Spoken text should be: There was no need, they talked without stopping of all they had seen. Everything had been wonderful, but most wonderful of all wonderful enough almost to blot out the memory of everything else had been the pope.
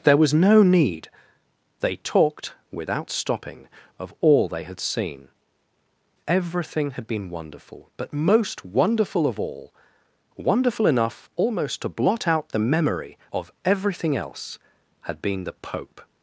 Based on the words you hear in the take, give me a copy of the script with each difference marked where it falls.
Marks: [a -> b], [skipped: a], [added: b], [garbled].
There was no need, they talked without stopping of all they had seen. Everything had been wonderful, but most wonderful of all wonderful enough almost to blot out the memory of everything else had been the pope.